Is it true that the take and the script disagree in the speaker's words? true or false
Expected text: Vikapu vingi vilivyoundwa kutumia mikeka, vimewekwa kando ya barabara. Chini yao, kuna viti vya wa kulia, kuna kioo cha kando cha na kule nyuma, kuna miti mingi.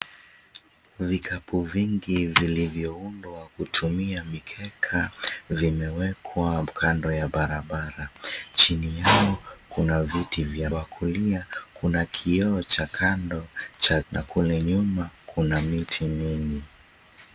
false